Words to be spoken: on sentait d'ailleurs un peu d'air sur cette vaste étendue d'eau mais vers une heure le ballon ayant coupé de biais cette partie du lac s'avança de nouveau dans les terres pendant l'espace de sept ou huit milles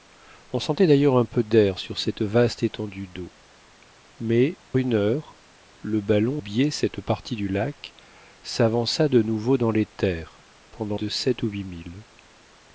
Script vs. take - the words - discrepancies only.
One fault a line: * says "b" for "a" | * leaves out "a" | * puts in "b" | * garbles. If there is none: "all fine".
* leaves out "vers"
* leaves out "ayant coupé de"
* leaves out "l'espace"